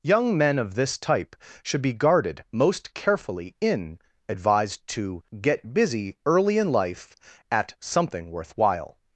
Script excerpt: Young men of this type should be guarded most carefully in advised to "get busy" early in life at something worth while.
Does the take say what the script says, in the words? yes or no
yes